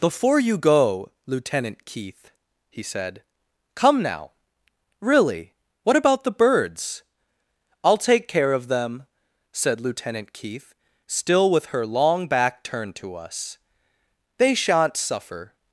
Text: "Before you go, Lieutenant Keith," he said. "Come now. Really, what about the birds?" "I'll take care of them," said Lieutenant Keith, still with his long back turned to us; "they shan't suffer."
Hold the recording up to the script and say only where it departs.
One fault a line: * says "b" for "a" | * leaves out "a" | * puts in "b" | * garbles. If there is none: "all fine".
* says "her" for "his"